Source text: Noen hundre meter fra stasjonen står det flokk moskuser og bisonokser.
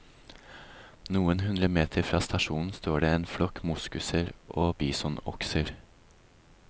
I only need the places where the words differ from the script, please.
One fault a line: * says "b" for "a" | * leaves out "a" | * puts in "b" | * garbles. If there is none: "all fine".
* puts in "en"